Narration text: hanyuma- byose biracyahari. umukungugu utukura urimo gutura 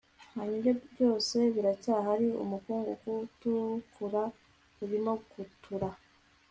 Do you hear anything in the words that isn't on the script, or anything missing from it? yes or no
no